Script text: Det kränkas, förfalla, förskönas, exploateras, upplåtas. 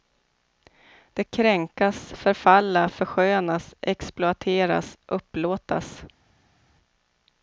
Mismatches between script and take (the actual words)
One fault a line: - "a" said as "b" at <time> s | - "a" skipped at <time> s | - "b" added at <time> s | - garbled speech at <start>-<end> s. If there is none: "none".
none